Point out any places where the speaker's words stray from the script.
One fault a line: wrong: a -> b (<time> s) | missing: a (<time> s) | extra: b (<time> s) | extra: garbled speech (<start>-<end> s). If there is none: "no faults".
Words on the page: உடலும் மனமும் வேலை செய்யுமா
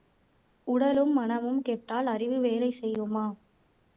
extra: கெட்டால் அறிவு (1.6 s)